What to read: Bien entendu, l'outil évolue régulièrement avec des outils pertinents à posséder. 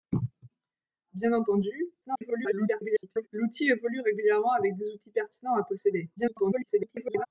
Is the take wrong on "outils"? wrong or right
right